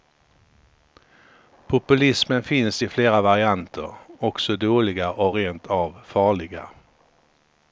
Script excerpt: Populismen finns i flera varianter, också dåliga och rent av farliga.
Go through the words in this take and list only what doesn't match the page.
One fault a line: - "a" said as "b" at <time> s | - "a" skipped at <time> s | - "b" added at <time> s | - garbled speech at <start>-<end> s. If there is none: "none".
none